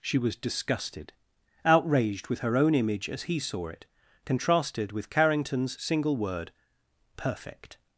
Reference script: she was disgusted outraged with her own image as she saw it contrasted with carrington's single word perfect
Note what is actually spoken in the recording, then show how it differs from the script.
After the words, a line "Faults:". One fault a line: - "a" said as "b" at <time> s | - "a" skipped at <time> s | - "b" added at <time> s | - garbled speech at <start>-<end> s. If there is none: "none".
she was disgusted outraged with her own image as he saw it contrasted with carrington's single word perfect
Faults:
- "she" said as "he" at 3.2 s